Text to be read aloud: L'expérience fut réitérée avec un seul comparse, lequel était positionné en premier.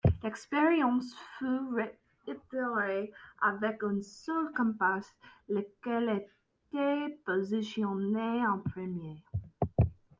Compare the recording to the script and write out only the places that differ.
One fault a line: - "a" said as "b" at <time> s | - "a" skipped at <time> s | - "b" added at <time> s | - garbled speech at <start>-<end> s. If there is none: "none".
none